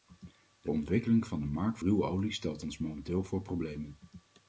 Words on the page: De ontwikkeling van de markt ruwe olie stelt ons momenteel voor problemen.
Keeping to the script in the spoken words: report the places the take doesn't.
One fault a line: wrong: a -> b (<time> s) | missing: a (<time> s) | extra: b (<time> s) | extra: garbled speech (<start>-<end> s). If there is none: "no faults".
no faults